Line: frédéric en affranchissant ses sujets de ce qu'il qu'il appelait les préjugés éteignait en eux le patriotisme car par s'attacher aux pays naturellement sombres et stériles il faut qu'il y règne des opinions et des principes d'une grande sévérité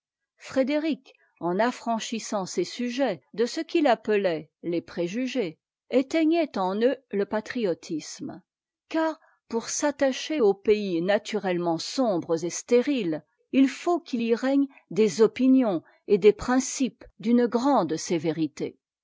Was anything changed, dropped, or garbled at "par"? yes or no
yes